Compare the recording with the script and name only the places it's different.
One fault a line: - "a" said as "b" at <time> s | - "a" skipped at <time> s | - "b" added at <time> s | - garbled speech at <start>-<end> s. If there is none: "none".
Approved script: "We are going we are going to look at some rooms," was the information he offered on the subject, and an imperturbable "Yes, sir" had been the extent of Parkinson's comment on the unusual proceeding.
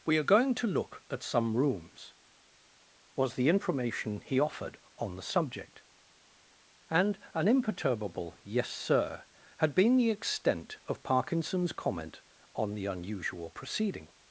- "we are going" skipped at 0.6 s